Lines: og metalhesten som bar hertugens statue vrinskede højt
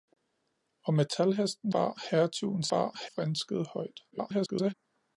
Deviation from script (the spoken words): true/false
true